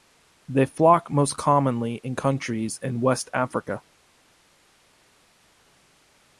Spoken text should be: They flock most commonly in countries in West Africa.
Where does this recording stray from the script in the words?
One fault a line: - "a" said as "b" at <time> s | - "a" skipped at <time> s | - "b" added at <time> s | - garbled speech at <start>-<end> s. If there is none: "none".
none